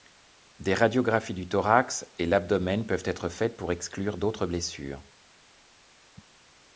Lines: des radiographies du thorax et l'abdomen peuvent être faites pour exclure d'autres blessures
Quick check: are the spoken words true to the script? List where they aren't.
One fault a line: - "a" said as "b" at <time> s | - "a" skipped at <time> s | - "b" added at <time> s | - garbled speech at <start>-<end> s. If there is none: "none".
none